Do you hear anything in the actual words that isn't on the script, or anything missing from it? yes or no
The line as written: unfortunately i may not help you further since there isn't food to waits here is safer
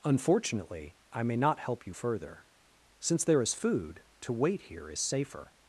yes